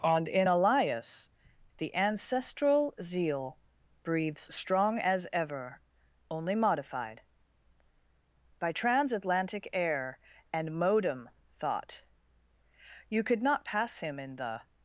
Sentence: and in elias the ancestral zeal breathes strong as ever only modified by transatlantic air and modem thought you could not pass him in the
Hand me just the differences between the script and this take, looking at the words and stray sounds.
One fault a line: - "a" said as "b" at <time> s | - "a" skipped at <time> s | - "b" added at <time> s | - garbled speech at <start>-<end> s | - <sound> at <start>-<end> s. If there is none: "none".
none